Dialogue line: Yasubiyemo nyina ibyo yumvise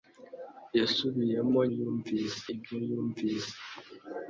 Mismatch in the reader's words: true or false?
true